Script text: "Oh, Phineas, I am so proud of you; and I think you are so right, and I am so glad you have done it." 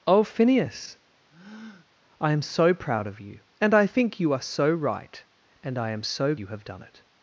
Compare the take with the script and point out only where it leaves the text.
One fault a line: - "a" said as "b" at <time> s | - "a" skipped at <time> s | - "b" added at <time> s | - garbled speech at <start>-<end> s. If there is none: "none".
- "glad" skipped at 6.3 s